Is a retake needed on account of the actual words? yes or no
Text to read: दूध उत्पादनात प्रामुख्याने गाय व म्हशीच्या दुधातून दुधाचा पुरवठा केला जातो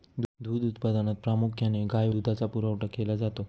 yes